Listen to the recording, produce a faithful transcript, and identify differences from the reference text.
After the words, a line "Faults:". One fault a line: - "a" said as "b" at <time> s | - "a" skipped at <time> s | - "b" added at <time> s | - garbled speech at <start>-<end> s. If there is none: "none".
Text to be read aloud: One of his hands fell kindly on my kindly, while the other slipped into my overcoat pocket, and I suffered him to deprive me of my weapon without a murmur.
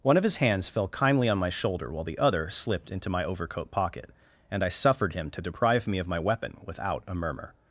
One of his hands fell kindly on my shoulder, while the other slipped into my overcoat pocket, and I suffered him to deprive me of my weapon without a murmur.
Faults:
- "kindly" said as "shoulder" at 1.5 s